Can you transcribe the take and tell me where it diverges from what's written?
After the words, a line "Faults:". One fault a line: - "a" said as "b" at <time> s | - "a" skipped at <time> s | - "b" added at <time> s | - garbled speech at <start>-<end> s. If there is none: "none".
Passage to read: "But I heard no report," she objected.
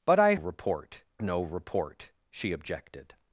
"But I report no report," she objected.
Faults:
- "heard" said as "report" at 0.3 s